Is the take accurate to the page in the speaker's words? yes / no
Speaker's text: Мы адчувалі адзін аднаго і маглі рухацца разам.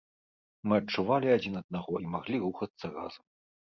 yes